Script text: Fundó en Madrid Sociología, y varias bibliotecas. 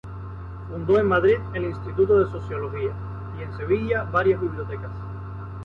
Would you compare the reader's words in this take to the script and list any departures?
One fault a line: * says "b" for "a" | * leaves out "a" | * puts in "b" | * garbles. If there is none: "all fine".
* puts in "el Instituto de"
* puts in "en Sevilla"